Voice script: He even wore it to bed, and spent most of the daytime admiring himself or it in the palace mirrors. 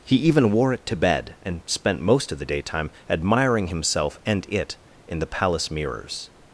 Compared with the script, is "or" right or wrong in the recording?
wrong